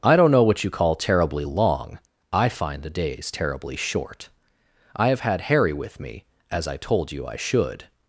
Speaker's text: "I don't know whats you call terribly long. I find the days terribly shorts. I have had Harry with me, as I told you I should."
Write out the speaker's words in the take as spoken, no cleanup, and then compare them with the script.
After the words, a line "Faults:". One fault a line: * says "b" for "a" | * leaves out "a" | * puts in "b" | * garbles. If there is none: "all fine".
"I don't know what you call terribly long. I find the days terribly short. I have had Harry with me, as I told you I should."
Faults:
* says "what" for "whats"
* says "short" for "shorts"